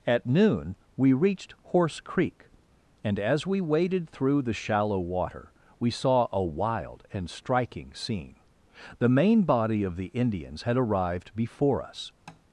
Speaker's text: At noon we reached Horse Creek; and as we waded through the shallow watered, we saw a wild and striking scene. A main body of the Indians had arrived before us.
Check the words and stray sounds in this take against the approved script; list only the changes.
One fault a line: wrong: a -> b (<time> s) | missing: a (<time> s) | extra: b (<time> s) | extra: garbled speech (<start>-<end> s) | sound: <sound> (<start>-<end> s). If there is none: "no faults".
wrong: watered -> water (5.0 s)
wrong: A -> The (9.0 s)
sound: tap (12.3-12.4 s)